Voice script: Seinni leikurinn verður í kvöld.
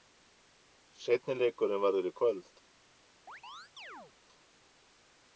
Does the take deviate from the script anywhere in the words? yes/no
no